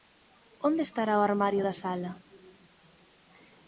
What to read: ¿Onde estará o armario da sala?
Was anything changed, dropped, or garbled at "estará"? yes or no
no